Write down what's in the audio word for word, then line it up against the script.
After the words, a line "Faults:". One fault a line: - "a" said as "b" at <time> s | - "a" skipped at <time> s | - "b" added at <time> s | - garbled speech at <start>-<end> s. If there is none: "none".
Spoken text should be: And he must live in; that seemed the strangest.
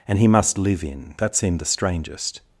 And he must live in; that seemed the strangest.
Faults:
none